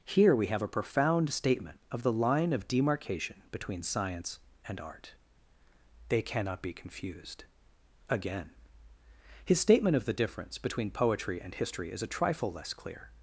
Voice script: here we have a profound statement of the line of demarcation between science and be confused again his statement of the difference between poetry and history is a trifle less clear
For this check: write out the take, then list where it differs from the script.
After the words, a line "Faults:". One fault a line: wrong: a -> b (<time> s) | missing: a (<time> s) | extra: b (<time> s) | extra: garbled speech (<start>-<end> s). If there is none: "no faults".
here we have a profound statement of the line of demarcation between science and art they cannot be confused again his statement of the difference between poetry and history is a trifle less clear
Faults:
extra: art they cannot (4.8 s)